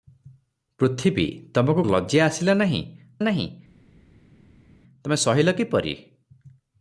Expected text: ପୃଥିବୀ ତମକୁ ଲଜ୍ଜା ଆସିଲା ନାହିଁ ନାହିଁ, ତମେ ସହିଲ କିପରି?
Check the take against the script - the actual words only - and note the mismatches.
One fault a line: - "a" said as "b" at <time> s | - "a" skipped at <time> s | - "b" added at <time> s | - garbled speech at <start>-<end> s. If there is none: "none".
none